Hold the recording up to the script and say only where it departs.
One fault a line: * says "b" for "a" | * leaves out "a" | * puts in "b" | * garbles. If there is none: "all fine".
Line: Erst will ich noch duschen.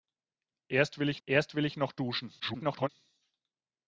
* puts in "erst will ich"
* garbles